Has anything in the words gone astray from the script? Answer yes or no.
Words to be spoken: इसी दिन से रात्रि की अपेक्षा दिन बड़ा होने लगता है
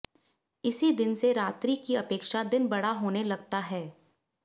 no